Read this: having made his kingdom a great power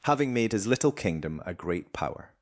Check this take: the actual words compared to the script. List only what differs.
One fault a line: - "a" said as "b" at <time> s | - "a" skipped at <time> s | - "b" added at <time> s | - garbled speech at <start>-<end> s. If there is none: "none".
- "little" added at 0.7 s